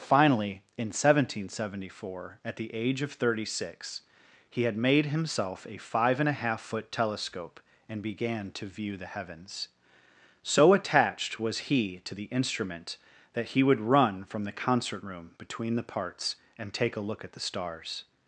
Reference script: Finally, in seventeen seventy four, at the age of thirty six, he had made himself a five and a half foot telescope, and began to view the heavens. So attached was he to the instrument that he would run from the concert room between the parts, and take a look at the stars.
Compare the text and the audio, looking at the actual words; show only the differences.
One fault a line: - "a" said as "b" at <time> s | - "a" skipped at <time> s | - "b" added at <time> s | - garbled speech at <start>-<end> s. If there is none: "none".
none